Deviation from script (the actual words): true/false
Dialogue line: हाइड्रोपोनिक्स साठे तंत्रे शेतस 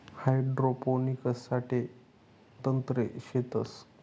false